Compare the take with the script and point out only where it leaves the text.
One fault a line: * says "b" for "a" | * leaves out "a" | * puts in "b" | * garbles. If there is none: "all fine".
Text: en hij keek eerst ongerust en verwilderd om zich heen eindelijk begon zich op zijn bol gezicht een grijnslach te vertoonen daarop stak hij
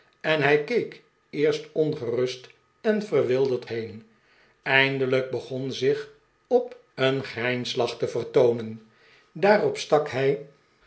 * leaves out "om zich"
* leaves out "zijn bol gezicht"